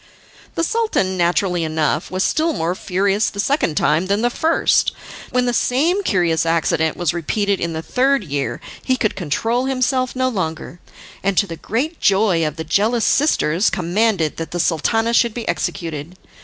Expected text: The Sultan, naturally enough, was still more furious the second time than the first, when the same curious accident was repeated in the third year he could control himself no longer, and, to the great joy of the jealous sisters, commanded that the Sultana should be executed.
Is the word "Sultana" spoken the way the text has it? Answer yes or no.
yes